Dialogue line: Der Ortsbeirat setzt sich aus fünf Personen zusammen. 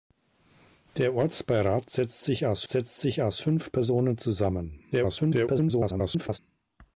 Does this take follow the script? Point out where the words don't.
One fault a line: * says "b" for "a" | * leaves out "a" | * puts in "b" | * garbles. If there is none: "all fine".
* puts in "setzt sich aus"
* garbles